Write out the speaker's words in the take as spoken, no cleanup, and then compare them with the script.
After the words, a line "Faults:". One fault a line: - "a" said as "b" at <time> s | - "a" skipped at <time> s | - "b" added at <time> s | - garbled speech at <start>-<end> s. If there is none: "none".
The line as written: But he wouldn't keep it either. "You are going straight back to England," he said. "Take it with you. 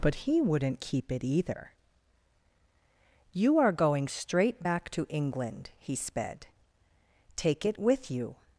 But he wouldn't keep it either. "You are going straight back to England," he sped. "Take it with you.
Faults:
- "said" said as "sped" at 5.9 s